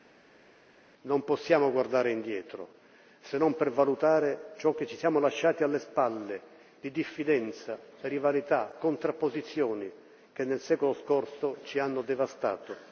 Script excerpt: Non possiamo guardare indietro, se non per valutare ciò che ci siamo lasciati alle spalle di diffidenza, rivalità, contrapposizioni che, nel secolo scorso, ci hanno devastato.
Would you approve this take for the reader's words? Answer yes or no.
yes